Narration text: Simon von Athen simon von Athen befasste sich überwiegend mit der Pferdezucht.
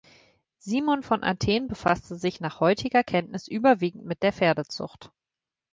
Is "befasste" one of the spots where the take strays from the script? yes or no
yes